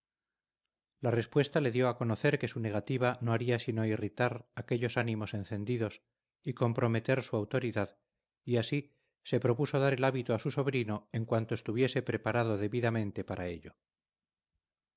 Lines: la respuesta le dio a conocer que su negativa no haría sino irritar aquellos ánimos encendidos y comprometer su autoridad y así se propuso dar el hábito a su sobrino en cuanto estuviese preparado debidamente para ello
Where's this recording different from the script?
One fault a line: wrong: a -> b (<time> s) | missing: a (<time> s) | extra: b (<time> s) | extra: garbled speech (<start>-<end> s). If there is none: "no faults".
no faults